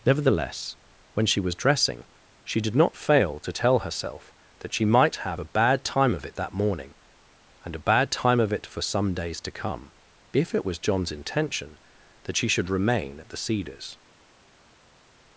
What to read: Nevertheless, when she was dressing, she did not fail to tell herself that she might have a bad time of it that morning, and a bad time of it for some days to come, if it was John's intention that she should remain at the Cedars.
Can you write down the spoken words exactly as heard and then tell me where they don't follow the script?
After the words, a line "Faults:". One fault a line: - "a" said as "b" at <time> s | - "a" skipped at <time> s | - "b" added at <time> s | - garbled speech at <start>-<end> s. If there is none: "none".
Nevertheless, when she was dressing, she did not fail to tell herself that she might have a bad time of it that morning, and a bad time of it for some days to come, if it was John's intention that she should remain at the Cedars.
Faults:
none